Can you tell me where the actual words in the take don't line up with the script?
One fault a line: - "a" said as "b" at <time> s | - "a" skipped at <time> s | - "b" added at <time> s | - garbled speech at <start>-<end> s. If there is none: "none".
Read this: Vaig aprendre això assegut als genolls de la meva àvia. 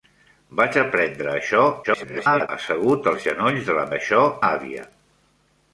- garbled speech at 1.8-2.5 s
- "meva" said as "això" at 3.9 s